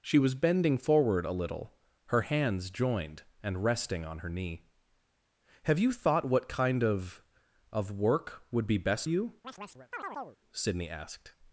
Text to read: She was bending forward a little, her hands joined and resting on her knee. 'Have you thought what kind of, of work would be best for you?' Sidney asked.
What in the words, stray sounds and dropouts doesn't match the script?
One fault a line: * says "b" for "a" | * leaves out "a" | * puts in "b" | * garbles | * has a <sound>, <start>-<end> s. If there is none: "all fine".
* leaves out "for"
* has a chirp, 9.4-10.4 s